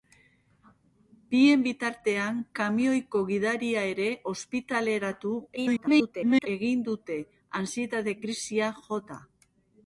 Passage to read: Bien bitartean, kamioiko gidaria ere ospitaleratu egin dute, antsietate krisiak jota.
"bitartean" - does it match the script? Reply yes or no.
yes